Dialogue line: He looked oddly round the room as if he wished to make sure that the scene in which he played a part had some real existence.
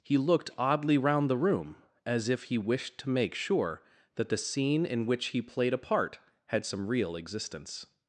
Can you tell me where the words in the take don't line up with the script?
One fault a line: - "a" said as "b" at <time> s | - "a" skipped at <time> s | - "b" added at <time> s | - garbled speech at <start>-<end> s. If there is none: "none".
none